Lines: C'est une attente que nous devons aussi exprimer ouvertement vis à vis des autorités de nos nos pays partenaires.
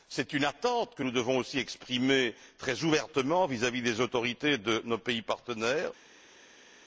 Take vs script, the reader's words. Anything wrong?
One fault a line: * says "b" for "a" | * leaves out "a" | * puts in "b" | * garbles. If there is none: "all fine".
* puts in "très"
* leaves out "nos"